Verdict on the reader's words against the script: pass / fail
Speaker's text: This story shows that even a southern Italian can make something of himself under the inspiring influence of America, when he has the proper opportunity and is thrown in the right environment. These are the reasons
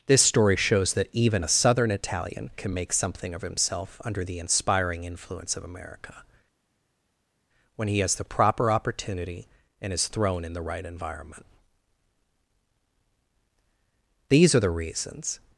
pass